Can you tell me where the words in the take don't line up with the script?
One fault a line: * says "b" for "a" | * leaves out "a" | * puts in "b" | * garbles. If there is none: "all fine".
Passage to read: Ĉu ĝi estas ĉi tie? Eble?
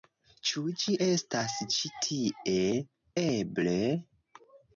all fine